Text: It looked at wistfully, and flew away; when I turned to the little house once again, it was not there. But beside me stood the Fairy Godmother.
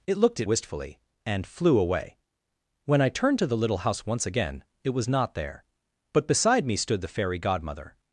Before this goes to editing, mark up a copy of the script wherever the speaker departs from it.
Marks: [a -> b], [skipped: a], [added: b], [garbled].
It looked at wistfully, and flew away; when I turned to the little house once again, it was not there. But beside me stood the Fairy Godmother.